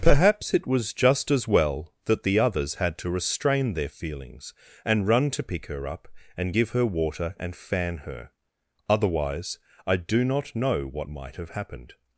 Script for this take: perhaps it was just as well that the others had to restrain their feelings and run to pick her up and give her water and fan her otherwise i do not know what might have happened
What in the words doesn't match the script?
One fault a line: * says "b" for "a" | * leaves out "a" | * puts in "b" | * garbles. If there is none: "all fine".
all fine